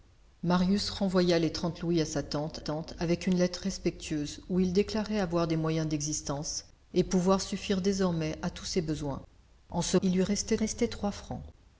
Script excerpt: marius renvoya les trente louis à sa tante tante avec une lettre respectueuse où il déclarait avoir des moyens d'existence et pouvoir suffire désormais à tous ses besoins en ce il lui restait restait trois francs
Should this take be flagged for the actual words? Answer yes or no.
no